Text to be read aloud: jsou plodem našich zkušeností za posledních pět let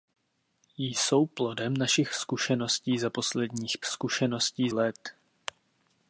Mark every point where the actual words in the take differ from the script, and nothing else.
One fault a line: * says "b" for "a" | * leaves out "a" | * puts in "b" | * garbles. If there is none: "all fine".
* says "zkušeností" for "pět"